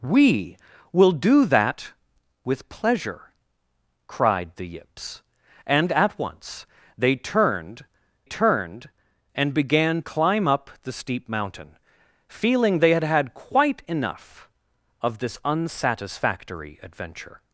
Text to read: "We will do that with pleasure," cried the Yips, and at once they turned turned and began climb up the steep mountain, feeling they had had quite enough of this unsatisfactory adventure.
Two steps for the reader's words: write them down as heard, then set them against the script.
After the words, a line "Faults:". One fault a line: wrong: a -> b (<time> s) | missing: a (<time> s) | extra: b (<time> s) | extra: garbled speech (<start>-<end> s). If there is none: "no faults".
"We will do that with pleasure," cried the Yips, and at once they turned turned and began climb up the steep mountain, feeling they had had quite enough of this unsatisfactory adventure.
Faults:
no faults